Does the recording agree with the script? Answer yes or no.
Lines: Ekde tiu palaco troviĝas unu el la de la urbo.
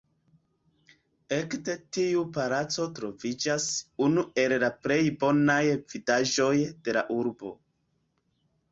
no